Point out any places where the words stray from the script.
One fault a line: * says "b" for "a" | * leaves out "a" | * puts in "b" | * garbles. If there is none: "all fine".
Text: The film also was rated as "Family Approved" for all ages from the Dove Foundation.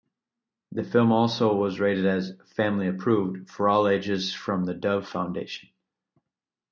all fine